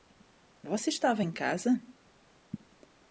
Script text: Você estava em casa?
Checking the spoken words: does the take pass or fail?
pass